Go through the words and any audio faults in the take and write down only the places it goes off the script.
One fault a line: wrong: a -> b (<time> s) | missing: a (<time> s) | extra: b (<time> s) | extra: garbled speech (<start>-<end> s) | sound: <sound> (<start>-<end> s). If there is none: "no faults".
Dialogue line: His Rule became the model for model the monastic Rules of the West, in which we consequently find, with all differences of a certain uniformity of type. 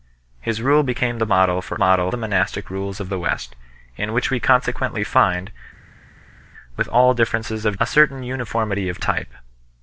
no faults